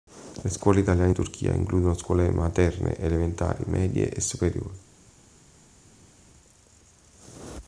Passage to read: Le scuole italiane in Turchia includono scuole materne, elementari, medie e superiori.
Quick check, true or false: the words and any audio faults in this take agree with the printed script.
true